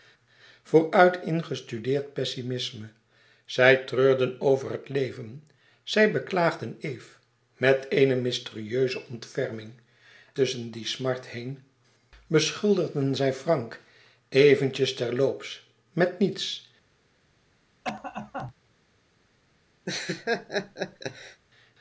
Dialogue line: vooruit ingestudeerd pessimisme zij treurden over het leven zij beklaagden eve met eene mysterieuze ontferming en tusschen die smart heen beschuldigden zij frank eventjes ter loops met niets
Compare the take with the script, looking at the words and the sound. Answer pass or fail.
fail